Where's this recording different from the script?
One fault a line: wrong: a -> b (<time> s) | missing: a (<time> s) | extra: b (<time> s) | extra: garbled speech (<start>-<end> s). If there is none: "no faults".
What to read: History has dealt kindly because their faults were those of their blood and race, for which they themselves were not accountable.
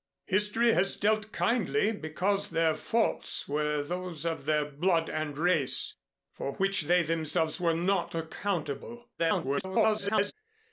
extra: garbled speech (9.2-10.3 s)